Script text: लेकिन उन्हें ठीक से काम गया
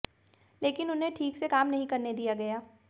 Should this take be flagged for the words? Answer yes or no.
yes